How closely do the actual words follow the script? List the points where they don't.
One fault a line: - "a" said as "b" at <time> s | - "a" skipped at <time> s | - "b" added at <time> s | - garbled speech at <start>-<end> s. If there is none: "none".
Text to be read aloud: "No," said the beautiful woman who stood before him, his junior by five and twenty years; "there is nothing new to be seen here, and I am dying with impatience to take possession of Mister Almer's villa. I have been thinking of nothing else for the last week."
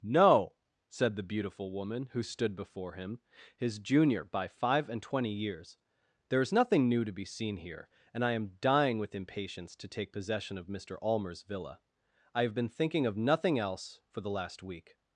none